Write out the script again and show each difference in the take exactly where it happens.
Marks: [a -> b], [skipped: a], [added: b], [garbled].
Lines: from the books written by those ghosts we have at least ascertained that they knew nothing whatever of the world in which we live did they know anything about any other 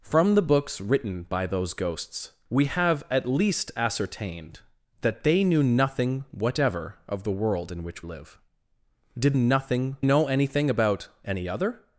from the books written by those ghosts we have at least ascertained that they knew nothing whatever of the world in which [skipped: we] live did [they -> nothing] know anything about any other